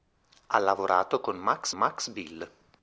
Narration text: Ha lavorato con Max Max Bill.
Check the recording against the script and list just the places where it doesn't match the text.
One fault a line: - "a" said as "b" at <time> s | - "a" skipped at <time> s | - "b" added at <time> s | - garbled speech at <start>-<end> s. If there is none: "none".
none